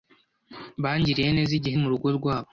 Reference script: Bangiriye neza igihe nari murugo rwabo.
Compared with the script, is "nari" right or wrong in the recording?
wrong